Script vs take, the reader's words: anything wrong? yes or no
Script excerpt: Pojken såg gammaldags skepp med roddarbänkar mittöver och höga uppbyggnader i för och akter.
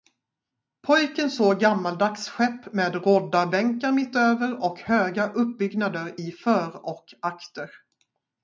no